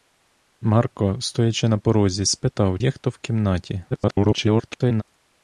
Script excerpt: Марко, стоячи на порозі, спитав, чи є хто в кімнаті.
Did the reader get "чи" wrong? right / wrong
wrong